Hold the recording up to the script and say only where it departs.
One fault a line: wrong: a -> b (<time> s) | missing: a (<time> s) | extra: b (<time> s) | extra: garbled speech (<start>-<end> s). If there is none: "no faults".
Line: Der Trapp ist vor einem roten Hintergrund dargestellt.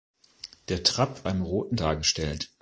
missing: ist vor (1.2 s)
missing: Hintergrund (1.8 s)